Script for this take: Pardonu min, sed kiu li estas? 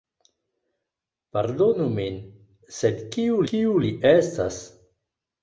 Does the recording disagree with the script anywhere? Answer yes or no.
yes